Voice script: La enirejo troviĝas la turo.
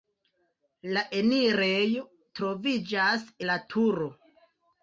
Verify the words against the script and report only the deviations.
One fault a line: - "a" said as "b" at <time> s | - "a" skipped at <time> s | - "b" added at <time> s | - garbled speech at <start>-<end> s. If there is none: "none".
none